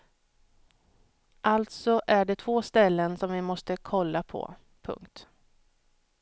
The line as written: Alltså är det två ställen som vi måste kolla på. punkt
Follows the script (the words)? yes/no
yes